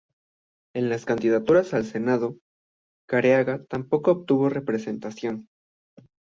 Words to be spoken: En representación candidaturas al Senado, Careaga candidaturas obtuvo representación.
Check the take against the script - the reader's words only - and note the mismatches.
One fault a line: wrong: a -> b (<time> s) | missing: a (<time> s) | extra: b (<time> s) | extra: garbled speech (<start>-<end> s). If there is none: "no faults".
wrong: representación -> las (0.9 s)
wrong: candidaturas -> tampoco (3.7 s)